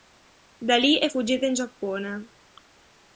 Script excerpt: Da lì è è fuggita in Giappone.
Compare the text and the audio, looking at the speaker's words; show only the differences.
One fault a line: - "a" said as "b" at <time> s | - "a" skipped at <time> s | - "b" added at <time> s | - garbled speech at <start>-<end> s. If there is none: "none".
- "è" skipped at 1.1 s